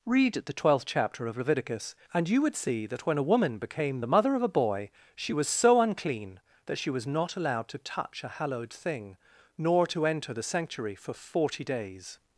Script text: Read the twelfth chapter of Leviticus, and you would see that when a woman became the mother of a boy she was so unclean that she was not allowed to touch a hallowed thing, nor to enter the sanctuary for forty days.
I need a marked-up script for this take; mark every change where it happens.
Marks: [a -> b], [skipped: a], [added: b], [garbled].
Read the twelfth chapter of Leviticus, and you would see that when a woman became the mother of a boy she was so unclean that she was not allowed to touch a hallowed thing, nor to enter the sanctuary for forty days.